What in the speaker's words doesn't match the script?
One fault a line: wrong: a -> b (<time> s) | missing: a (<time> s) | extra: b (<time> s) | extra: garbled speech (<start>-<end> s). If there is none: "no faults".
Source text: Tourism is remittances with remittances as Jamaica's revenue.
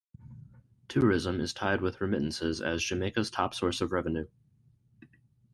wrong: remittances -> tied (1.5 s)
extra: top source of (3.3 s)